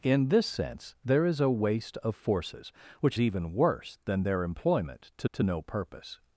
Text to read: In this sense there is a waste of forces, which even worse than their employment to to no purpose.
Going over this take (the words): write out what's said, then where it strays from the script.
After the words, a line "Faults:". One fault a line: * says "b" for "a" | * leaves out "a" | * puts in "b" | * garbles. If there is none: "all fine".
In this sense there is a waste of forces, which even worse than their employment to to no purpose.
Faults:
all fine